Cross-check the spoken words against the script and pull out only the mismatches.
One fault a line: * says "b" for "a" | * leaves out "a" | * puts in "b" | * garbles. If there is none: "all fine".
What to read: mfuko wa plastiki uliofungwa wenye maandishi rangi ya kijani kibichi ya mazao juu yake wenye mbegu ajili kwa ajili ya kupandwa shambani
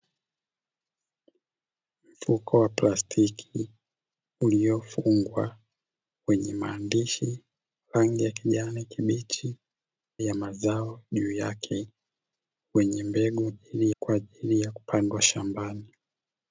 all fine